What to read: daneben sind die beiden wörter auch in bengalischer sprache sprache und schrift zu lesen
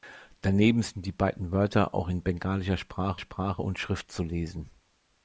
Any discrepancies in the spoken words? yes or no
no